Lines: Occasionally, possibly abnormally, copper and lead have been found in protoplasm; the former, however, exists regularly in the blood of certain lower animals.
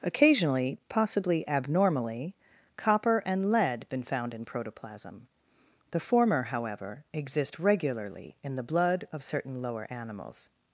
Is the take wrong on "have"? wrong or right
wrong